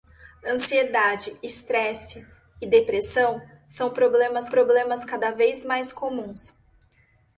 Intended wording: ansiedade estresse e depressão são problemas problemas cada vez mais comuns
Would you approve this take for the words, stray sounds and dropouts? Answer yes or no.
yes